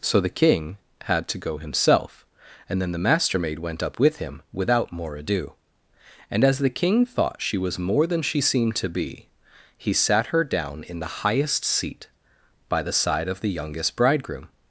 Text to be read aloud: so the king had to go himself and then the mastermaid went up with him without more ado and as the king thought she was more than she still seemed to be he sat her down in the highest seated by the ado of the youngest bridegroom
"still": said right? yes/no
no